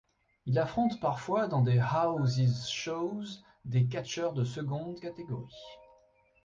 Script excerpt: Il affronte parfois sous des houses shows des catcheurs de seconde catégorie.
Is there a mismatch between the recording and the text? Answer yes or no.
yes